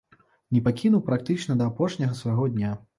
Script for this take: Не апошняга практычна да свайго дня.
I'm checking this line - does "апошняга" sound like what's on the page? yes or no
no